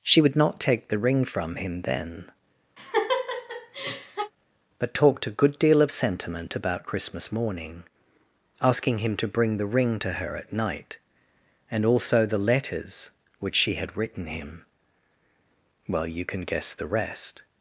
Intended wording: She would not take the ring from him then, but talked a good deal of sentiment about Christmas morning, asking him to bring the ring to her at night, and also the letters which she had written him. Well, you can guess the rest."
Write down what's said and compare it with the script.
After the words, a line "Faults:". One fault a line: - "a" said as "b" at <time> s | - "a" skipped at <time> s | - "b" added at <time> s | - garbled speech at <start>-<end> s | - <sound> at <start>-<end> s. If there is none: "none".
She would not take the ring from him then, but talked a good deal of sentiment about Christmas morning, asking him to bring the ring to her at night, and also the letters which she had written him. Well, you can guess the rest."
Faults:
- laugh at 2.8-4.3 s